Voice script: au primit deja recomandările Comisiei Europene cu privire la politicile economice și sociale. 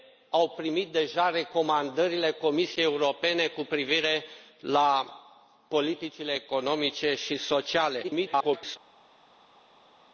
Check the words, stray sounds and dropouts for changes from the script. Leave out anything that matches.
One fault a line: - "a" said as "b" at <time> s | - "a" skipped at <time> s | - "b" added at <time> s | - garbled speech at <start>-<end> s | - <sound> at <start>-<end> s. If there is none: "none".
- garbled speech at 8.0-8.8 s